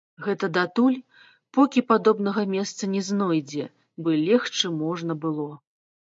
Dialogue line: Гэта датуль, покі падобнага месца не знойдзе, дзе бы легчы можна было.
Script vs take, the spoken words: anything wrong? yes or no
yes